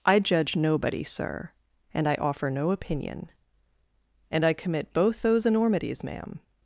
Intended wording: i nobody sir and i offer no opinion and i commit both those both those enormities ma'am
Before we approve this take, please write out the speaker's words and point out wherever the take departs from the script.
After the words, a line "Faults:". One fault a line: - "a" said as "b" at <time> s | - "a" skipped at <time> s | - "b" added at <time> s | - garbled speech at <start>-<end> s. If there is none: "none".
i judge nobody sir and i offer no opinion and i commit both those enormities ma'am
Faults:
- "judge" added at 0.2 s
- "both those" skipped at 5.5 s